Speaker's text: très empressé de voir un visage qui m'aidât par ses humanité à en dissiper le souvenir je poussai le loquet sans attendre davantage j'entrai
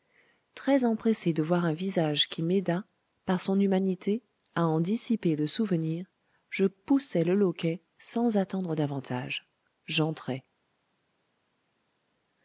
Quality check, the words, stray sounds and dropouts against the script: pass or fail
fail